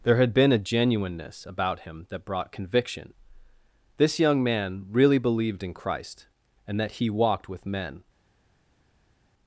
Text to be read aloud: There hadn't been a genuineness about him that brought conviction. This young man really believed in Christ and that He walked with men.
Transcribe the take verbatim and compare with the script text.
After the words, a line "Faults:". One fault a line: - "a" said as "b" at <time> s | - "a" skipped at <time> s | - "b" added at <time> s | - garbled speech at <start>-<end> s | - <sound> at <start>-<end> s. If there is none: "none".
There had been a genuineness about him that brought conviction. This young man really believed in Christ and that He walked with men.
Faults:
- "hadn't" said as "had" at 0.2 s